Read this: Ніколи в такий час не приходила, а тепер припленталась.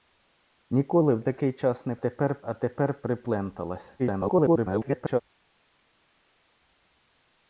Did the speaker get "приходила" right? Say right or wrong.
wrong